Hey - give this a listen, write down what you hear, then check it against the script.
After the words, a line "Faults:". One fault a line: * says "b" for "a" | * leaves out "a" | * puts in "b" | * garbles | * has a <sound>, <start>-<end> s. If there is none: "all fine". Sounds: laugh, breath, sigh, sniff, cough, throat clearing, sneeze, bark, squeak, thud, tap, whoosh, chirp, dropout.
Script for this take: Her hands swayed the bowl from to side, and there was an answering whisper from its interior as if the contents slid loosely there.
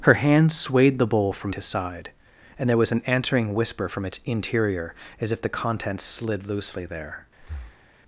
Her hands swayed the bowl from to side, and there was an answering whisper from its interior as if the contents slid loosely there.
Faults:
* has a breath, 7.4-7.9 s